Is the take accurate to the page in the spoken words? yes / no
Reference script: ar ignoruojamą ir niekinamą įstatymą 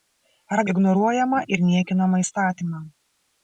yes